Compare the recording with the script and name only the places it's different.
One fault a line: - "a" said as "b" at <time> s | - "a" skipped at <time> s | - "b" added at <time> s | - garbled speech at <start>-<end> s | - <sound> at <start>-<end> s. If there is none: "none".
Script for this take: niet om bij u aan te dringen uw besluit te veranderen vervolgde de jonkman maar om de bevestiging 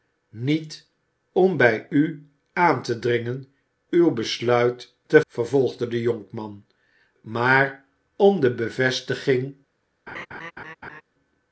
- "veranderen" skipped at 5.2 s
- laugh at 10.1-11.0 s